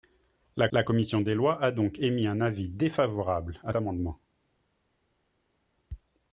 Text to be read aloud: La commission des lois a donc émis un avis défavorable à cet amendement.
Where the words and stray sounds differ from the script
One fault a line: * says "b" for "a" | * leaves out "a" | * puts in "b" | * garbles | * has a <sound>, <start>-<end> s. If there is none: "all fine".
* puts in "la"
* leaves out "cet"